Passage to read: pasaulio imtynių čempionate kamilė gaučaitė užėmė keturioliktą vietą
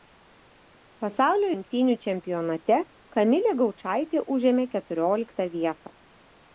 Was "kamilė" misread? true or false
false